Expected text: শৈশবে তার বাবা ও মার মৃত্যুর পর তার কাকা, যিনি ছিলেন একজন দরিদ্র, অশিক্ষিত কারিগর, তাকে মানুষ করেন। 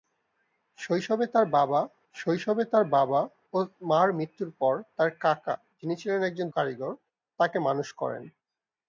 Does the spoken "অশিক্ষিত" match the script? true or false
false